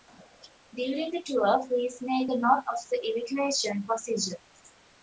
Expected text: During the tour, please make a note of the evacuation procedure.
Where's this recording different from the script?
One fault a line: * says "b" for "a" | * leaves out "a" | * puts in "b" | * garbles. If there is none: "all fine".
all fine